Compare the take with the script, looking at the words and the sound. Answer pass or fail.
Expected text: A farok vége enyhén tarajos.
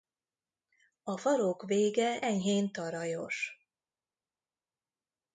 pass